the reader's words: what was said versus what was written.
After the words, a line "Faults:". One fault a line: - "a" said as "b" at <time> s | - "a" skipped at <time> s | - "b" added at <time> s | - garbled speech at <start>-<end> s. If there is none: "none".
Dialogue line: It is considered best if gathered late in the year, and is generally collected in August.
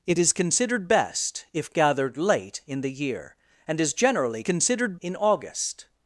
It is considered best if gathered late in the year, and is generally considered in August.
Faults:
- "collected" said as "considered" at 4.4 s